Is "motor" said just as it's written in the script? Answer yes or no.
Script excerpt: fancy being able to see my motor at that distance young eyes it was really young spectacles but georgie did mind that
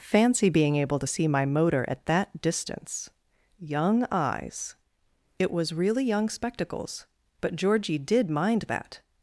yes